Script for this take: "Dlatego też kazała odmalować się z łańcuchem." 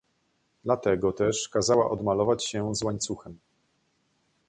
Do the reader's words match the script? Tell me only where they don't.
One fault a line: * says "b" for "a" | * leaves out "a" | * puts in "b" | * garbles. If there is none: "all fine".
all fine